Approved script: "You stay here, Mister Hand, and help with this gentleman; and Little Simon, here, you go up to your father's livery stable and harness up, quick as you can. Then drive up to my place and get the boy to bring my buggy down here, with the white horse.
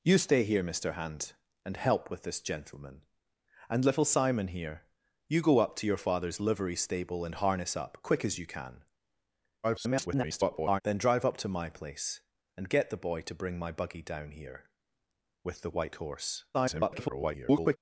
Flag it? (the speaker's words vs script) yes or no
yes